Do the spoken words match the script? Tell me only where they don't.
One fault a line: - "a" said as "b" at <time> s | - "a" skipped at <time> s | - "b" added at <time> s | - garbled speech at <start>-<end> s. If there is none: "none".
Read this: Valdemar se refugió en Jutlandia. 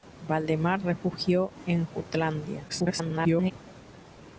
- "se" skipped at 0.8 s
- garbled speech at 2.7-3.5 s